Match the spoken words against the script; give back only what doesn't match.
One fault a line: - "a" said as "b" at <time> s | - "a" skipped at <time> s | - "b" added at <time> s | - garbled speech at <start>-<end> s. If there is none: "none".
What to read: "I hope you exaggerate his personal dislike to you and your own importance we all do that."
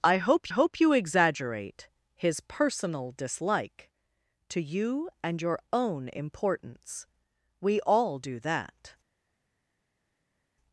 - "hope" added at 0.5 s